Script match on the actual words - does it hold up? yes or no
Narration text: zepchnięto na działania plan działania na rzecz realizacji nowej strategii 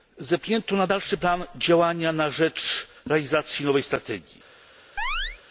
no